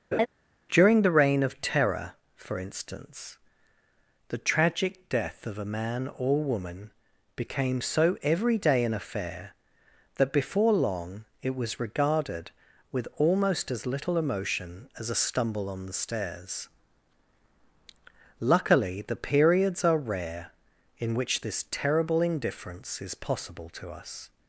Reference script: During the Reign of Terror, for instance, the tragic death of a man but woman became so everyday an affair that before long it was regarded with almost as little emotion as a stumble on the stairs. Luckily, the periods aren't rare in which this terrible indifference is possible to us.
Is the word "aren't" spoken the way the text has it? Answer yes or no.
no